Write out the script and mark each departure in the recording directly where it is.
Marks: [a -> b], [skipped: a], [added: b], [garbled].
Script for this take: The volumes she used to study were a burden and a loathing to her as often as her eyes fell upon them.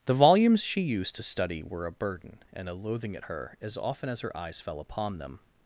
The volumes she used to study were a burden and a loathing [to -> at] her as often as her eyes fell upon them.